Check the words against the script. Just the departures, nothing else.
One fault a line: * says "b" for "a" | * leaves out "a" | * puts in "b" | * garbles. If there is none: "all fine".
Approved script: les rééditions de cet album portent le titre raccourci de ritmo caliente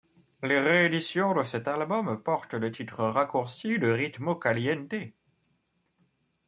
all fine